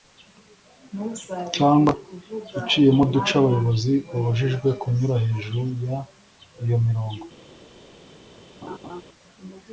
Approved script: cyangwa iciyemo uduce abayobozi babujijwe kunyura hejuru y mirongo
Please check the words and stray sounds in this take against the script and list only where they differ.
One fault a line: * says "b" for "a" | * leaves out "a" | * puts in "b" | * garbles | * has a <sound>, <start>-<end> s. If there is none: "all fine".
* puts in "iyo"
* has a laugh, 8.6-9.0 s